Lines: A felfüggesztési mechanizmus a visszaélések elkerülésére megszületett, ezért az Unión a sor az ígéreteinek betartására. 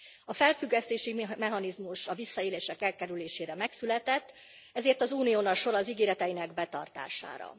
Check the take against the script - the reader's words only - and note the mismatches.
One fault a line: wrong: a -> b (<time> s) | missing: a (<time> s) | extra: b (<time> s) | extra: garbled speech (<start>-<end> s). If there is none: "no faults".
no faults